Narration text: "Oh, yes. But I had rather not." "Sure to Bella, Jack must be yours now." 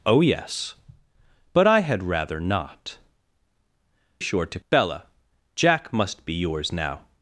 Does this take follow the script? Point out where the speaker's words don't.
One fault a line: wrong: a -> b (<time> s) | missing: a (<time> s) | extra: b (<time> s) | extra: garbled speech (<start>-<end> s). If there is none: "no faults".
no faults